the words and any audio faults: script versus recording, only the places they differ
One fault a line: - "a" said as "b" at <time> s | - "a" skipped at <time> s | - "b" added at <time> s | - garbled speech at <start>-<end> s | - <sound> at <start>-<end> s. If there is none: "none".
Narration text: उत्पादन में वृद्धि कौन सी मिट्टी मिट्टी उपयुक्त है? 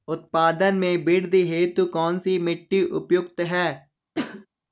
- "हेतु" added at 1.5 s
- "मिट्टी" skipped at 2.8 s
- cough at 4.1-4.5 s